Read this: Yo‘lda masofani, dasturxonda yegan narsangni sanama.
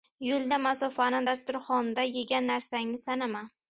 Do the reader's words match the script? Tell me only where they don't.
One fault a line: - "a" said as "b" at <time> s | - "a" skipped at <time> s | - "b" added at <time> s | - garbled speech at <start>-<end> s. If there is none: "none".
none